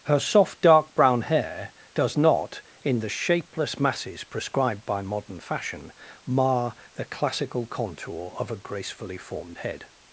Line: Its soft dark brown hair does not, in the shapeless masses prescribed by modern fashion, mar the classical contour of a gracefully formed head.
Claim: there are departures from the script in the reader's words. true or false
true